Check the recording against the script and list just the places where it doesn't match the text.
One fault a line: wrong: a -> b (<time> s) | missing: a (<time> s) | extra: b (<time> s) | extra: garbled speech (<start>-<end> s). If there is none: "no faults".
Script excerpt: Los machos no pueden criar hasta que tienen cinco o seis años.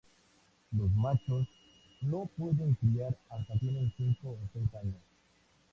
missing: que (3.5 s)